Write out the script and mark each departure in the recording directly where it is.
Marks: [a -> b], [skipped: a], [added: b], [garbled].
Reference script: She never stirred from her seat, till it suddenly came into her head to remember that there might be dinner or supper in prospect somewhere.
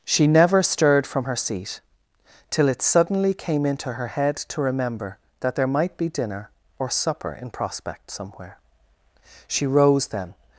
She never stirred from her seat, till it suddenly came into her head to remember that there might be dinner or supper in prospect somewhere. [added: She rose then]